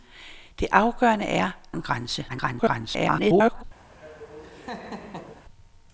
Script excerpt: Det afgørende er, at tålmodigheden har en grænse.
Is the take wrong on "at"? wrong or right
wrong